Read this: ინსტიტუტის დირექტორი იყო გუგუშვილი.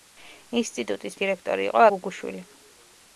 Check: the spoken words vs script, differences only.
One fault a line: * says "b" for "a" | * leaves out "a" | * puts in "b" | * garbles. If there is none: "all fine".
all fine